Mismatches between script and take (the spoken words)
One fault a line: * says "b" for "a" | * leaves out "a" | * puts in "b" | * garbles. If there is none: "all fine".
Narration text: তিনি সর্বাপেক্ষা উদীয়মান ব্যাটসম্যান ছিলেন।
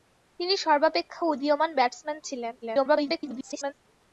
* garbles